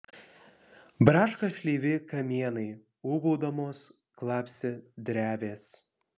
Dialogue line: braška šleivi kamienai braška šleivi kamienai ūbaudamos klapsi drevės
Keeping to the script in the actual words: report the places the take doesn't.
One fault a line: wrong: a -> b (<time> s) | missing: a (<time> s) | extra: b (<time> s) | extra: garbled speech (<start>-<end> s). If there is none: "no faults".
missing: braška šleivi kamienai (2.6 s)